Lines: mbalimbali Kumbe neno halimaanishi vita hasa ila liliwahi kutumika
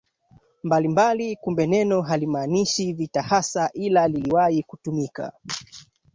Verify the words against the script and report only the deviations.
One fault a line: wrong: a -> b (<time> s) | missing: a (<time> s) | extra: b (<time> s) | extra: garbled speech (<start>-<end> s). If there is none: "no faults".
no faults